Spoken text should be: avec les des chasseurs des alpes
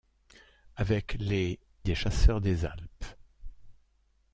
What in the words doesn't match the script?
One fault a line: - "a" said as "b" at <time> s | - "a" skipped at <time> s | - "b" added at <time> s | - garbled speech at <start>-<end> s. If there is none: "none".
none